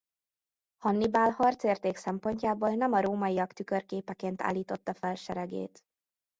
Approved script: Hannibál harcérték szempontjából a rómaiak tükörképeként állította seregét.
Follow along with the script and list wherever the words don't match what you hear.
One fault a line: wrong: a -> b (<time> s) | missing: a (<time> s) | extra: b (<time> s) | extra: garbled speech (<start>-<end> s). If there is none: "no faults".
extra: nem (2.7 s)
extra: fel (4.9 s)